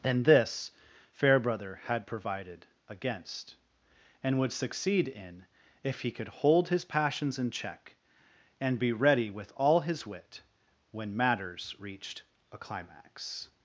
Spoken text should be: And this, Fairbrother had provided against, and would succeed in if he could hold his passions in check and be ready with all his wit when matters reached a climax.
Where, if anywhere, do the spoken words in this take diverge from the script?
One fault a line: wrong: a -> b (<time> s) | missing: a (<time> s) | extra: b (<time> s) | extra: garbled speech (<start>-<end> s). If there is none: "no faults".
no faults